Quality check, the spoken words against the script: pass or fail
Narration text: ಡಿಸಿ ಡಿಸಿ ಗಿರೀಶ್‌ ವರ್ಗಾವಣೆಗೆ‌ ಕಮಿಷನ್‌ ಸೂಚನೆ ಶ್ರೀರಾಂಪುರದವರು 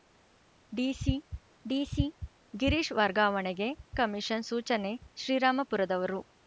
pass